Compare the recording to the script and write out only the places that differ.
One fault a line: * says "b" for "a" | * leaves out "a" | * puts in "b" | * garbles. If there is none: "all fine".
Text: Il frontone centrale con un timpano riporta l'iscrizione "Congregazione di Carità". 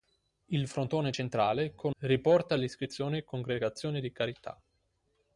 * leaves out "un timpano"